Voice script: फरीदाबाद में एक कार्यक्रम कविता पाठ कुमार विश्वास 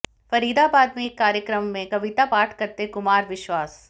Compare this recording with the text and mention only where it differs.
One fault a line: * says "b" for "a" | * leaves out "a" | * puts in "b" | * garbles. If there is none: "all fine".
* puts in "में"
* puts in "करते"